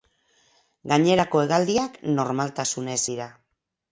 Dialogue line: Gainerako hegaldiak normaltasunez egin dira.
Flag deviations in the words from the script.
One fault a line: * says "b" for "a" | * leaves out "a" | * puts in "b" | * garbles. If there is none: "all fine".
* leaves out "egin"